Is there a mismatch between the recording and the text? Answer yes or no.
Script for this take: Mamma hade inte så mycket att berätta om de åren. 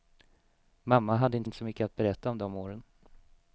yes